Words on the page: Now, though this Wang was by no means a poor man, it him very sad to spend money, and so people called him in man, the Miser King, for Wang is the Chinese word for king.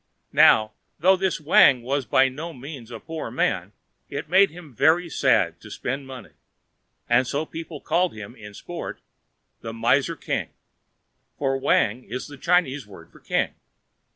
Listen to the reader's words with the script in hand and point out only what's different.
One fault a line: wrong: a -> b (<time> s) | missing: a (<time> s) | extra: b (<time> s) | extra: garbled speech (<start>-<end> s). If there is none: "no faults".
extra: made (4.3 s)
wrong: man -> sport (8.5 s)